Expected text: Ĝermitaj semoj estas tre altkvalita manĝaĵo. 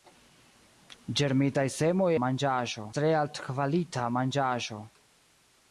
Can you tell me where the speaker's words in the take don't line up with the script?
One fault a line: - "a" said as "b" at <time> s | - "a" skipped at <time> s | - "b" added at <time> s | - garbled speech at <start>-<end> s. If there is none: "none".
- "estas" said as "manĝaĵo" at 2.3 s